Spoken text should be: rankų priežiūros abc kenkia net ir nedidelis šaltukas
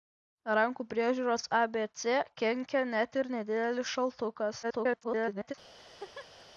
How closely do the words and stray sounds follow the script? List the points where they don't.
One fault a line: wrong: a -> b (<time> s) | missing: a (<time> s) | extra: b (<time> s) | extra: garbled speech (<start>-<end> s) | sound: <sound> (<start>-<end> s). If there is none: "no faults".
extra: garbled speech (4.6-5.5 s)
sound: laugh (5.8-6.5 s)